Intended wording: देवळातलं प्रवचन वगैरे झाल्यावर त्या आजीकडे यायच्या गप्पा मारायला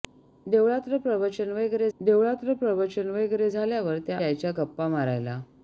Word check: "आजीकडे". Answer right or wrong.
wrong